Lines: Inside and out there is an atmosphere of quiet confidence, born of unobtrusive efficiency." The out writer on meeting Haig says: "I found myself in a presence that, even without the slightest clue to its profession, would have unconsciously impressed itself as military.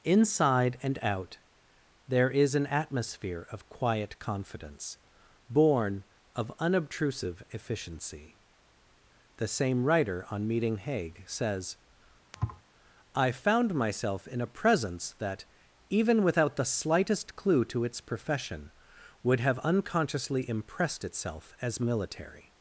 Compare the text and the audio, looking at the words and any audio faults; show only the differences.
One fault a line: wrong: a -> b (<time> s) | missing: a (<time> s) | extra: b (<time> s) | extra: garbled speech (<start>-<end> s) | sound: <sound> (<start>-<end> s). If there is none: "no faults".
wrong: out -> same (9.5 s)
sound: thud (12.3-12.6 s)